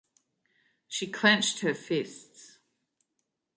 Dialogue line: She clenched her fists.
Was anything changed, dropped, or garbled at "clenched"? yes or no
no